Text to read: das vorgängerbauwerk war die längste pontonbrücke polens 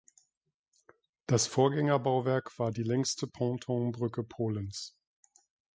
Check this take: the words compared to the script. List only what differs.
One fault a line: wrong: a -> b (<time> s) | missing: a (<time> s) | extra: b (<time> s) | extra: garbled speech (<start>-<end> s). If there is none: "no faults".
no faults